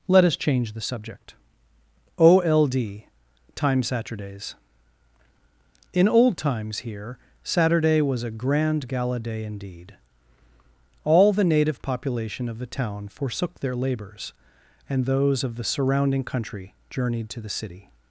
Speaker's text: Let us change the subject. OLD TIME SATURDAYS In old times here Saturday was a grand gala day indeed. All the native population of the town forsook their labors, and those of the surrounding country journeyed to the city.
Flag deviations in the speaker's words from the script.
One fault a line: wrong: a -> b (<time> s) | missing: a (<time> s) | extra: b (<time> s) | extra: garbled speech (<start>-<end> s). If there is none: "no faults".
no faults